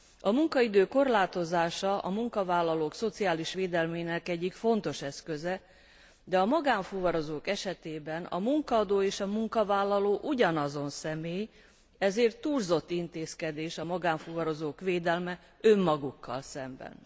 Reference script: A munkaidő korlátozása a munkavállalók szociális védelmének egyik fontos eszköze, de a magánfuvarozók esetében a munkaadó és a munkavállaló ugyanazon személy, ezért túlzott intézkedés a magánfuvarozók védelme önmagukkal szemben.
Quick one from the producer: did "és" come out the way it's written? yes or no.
yes